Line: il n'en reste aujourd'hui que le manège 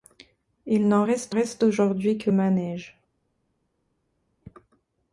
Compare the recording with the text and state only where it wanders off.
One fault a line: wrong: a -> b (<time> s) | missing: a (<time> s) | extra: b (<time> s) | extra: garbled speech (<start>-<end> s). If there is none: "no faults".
extra: reste (1.3 s)
missing: le (2.3 s)